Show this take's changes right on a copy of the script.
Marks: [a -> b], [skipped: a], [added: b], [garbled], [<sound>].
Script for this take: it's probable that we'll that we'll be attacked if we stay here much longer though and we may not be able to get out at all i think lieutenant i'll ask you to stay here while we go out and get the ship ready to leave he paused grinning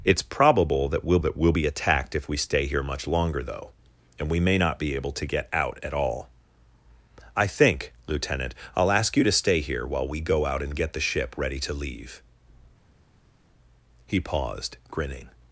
it's probable that we'll that we'll be attacked if we stay here much longer though and we may not be able to get out at all i think lieutenant i'll ask you to stay here while we go out and get the ship ready to leave he paused grinning